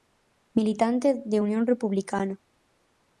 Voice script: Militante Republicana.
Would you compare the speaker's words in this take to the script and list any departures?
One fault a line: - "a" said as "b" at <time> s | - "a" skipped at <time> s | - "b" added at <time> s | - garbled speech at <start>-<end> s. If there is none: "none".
- "de Unión" added at 1.2 s